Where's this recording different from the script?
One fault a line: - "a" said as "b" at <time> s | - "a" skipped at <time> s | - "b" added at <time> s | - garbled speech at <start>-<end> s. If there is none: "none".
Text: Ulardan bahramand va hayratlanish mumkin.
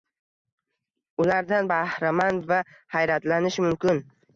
none